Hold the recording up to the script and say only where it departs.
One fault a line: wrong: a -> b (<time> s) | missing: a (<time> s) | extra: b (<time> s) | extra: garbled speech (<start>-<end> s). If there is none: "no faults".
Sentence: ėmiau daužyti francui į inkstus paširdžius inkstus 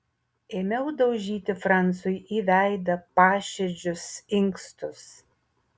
wrong: inkstus -> veidą (2.5 s)